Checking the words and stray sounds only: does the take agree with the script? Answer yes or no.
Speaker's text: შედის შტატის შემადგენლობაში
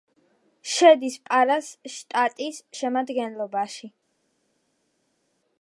no